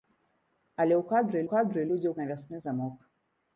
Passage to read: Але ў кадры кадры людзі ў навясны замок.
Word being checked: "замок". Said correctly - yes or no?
yes